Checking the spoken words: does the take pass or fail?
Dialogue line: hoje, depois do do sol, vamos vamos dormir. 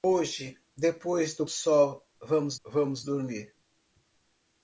pass